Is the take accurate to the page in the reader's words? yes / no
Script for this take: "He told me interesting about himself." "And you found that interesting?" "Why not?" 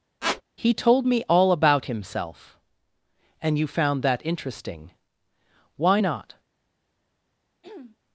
no